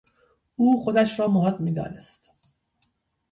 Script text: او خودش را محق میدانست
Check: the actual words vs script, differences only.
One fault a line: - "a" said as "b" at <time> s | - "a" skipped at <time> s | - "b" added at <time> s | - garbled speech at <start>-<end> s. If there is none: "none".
none